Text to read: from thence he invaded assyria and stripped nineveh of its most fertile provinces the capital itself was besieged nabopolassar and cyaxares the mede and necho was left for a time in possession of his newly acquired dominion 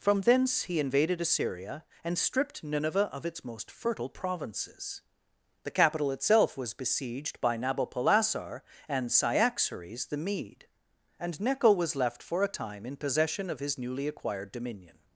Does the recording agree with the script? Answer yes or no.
no